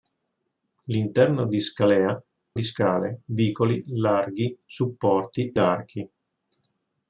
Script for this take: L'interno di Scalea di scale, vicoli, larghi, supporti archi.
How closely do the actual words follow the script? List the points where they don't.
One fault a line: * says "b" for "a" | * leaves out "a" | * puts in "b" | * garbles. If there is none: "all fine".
all fine